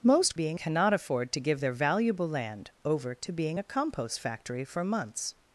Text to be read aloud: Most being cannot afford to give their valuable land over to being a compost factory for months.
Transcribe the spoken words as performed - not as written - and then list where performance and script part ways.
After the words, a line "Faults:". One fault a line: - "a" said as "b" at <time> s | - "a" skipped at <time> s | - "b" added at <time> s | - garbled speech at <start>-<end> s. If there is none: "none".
Most being cannot afford to give their valuable land over to being a compost factory for months.
Faults:
none